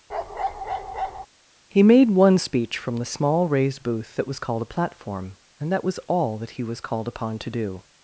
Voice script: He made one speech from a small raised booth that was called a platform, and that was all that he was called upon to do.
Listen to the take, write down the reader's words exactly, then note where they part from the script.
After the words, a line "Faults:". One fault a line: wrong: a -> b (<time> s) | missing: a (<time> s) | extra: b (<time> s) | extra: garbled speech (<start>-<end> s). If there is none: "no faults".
He made one speech from the small raised booth that was called a platform, and that was all that he was called upon to do.
Faults:
wrong: a -> the (3.0 s)